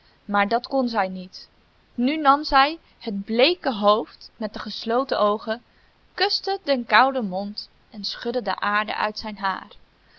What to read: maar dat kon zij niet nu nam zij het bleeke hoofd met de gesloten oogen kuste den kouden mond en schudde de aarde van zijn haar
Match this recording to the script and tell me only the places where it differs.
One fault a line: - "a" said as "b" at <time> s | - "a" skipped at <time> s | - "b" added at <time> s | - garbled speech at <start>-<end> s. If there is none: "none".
- "van" said as "uit" at 9.0 s